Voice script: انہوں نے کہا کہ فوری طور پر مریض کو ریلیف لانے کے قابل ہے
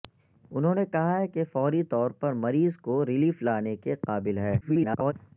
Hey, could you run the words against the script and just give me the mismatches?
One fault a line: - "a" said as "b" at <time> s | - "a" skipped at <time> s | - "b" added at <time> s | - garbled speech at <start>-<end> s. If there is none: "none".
- garbled speech at 4.6-5.1 s